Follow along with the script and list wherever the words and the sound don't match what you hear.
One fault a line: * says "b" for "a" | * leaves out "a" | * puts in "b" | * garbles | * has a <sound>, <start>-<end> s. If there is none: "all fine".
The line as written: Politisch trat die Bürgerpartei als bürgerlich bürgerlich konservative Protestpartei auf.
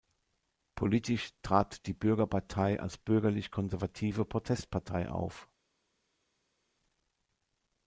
* leaves out "bürgerlich"